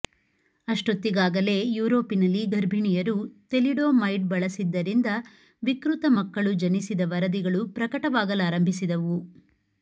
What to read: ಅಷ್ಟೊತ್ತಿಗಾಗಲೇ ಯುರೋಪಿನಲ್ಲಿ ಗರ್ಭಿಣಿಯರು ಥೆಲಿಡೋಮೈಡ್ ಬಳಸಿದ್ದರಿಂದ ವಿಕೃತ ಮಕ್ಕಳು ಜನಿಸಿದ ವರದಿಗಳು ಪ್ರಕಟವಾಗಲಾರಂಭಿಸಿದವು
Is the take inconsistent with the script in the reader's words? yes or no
no